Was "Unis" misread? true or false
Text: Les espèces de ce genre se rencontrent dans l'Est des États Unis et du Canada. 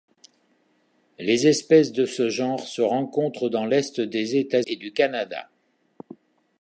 true